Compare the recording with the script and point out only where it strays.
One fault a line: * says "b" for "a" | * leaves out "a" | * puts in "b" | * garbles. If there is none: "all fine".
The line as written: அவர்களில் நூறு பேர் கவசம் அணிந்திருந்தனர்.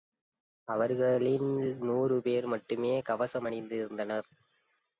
* puts in "மட்டுமே"